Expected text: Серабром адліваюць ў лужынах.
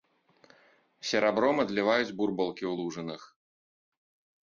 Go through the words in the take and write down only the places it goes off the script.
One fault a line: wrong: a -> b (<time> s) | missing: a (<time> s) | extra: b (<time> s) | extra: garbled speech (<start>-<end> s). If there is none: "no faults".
extra: бурбалкі (2.2 s)